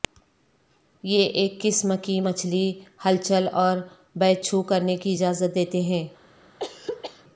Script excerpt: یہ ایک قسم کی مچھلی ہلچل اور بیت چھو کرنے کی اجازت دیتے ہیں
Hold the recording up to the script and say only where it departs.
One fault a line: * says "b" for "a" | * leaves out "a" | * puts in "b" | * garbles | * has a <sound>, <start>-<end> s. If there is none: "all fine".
* has a throat clearing, 6.6-7.2 s